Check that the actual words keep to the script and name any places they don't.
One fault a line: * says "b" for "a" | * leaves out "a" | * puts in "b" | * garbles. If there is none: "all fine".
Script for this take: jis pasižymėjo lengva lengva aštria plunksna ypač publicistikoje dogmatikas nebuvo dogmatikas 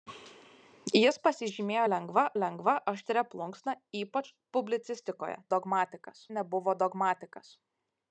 all fine